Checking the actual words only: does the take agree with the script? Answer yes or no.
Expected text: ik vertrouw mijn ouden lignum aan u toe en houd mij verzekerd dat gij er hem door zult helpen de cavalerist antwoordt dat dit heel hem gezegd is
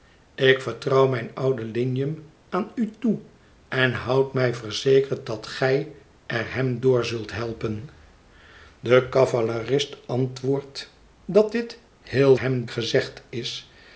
yes